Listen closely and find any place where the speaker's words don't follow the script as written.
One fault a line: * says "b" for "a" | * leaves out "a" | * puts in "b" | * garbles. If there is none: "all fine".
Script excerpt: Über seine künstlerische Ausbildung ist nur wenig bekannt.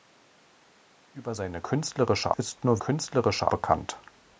* leaves out "Ausbildung"
* says "künstlerische" for "wenig"